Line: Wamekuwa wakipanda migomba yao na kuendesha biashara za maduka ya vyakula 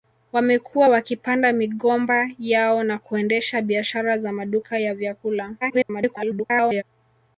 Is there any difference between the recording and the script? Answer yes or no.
yes